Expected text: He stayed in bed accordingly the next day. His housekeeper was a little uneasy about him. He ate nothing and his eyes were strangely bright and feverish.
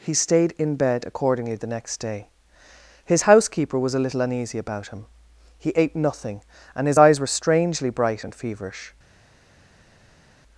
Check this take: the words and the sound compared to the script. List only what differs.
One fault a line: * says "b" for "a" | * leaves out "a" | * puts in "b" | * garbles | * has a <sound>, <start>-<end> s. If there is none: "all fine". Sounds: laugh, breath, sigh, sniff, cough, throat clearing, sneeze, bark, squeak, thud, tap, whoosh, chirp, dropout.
all fine